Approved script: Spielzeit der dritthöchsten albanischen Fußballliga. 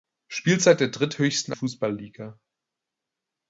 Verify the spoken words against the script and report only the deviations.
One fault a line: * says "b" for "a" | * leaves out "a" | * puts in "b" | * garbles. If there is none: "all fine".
* leaves out "albanischen"